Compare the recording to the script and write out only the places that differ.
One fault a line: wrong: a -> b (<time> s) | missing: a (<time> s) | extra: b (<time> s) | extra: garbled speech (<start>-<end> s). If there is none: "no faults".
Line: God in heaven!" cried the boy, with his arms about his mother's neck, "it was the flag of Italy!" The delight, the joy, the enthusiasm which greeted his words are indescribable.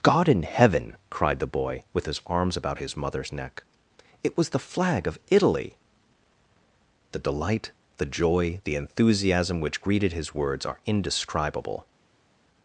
no faults